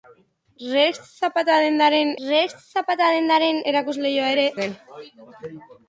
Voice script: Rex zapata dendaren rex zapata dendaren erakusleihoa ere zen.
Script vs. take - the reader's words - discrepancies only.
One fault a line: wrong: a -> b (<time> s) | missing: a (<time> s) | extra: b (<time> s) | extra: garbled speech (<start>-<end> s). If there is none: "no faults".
no faults